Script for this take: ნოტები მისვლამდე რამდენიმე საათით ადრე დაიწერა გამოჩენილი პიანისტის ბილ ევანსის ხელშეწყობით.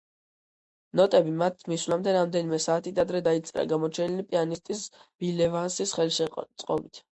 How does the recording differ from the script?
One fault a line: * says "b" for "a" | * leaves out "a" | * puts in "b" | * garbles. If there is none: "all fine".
* puts in "მათ"